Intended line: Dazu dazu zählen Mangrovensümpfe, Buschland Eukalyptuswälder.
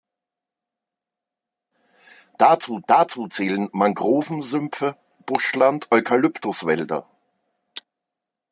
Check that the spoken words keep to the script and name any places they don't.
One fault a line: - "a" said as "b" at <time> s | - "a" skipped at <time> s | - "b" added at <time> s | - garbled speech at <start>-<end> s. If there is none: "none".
none